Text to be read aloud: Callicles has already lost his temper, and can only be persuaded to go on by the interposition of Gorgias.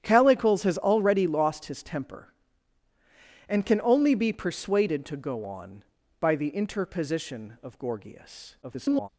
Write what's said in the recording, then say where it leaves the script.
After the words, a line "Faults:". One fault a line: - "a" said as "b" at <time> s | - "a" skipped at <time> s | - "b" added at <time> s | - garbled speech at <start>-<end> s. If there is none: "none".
Callicles has already lost his temper, and can only be persuaded to go on by the interposition of Gorgias. [garbled]
Faults:
- garbled speech at 8.6-9.1 s